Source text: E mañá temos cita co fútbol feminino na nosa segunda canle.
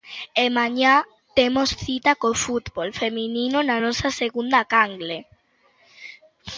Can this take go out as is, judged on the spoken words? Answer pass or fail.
pass